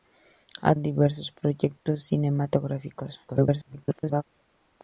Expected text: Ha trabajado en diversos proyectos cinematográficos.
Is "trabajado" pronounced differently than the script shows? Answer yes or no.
yes